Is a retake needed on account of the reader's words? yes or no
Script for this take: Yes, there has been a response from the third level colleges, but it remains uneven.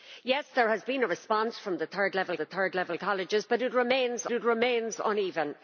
yes